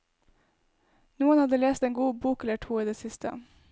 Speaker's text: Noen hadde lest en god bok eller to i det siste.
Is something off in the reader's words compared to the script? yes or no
no